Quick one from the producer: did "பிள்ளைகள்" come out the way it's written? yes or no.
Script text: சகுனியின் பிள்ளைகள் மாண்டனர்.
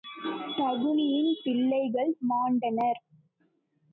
yes